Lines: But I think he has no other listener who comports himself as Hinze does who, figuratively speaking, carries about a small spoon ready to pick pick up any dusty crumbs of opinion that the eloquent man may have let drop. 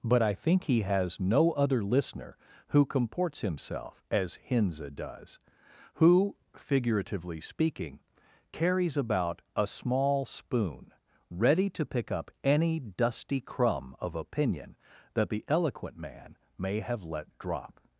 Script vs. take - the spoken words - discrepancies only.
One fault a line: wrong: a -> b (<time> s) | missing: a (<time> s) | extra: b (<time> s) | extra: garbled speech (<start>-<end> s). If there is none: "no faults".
missing: pick (12.1 s)
wrong: crumbs -> crumb (13.4 s)